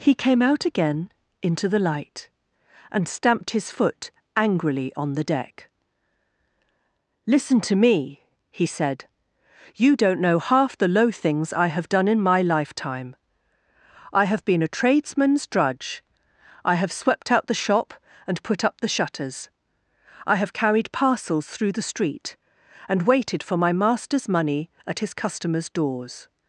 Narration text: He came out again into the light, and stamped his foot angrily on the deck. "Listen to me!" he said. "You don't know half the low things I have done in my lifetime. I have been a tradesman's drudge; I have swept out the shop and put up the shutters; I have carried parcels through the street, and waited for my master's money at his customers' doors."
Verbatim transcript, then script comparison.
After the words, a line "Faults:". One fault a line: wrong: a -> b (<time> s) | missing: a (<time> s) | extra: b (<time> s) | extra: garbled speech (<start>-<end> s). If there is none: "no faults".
He came out again into the light, and stamped his foot angrily on the deck. "Listen to me!" he said. "You don't know half the low things I have done in my lifetime. I have been a tradesman's drudge; I have swept out the shop and put up the shutters; I have carried parcels through the street, and waited for my master's money at his customers' doors."
Faults:
no faults